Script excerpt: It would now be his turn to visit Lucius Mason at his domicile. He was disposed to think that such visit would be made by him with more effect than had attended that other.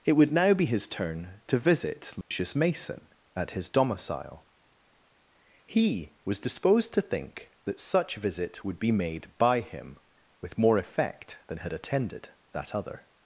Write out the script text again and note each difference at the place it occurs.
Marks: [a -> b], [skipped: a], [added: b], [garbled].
It would now be his turn to visit Lucius Mason at his domicile. He was disposed to think that such visit would be made by him with more effect than had attended that other.